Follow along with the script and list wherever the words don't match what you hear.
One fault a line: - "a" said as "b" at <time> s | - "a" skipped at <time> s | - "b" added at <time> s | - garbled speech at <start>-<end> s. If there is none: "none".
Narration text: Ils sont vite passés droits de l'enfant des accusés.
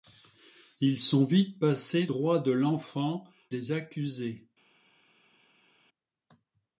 none